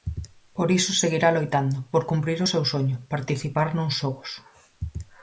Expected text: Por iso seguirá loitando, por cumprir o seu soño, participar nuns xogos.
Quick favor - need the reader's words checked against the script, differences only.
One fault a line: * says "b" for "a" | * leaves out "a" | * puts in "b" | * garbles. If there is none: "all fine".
all fine